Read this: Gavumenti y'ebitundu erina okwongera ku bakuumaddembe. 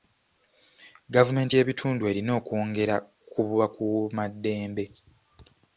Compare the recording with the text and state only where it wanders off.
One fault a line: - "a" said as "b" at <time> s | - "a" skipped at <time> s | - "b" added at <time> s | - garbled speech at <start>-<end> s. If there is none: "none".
none